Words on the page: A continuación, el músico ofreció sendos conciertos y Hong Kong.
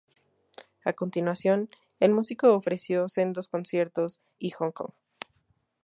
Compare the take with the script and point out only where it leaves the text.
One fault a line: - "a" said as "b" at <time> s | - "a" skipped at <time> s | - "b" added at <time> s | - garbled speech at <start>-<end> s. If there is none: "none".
none